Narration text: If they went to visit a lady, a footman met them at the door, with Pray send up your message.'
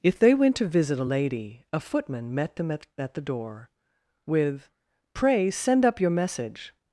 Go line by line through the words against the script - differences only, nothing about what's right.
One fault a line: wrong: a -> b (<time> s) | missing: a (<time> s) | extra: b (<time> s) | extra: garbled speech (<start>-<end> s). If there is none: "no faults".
extra: at (3.0 s)